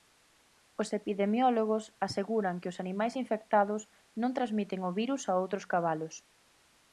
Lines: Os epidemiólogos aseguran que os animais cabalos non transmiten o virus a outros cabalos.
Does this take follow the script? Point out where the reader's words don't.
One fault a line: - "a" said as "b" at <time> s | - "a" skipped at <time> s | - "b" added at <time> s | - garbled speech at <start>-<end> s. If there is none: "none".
- "cabalos" said as "infectados" at 3.2 s